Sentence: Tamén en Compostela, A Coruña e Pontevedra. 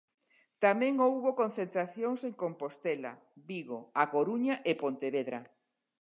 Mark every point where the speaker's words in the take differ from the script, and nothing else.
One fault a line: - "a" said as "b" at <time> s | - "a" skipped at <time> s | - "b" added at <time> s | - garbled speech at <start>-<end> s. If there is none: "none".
- "houbo concentracións" added at 1.1 s
- "Vigo" added at 3.5 s